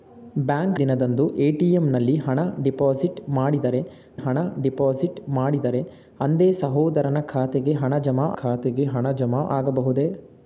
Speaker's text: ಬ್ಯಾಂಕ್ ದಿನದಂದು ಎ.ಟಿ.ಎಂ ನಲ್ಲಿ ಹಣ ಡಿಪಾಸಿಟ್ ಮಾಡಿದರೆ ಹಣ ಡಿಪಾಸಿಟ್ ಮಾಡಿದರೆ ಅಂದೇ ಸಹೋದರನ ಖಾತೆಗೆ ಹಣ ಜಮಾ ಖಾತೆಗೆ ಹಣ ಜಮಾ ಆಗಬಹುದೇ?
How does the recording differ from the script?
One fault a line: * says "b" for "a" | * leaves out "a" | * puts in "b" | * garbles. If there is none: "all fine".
all fine